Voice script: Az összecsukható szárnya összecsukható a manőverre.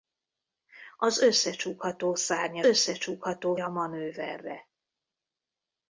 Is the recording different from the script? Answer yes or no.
no